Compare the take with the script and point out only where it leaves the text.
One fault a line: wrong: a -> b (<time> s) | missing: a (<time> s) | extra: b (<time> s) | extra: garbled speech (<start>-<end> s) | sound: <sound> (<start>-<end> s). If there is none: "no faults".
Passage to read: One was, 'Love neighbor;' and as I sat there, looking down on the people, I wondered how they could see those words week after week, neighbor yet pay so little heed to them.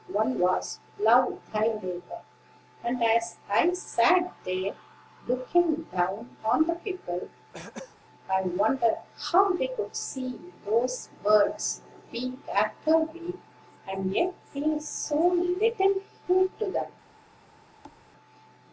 extra: thy (1.5 s)
sound: throat clearing (7.5-8.0 s)
wrong: neighbor -> and (13.9 s)
sound: thud (17.8-18.0 s)